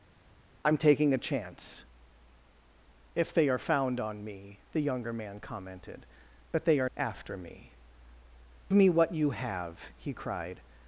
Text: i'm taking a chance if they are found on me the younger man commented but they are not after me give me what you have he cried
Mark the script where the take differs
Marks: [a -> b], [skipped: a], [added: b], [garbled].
i'm taking a chance if they are found on me the younger man commented but they are [skipped: not] after me [skipped: give] me what you have he cried